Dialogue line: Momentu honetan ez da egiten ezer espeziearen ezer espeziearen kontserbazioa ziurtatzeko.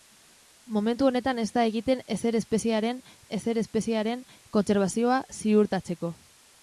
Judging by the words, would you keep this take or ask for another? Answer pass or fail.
pass